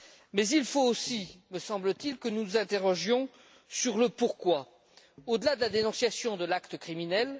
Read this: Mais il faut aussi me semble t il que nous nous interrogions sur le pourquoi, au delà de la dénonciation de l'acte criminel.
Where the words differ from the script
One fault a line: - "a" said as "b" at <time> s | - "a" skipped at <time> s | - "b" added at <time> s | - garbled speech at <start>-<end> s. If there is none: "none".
none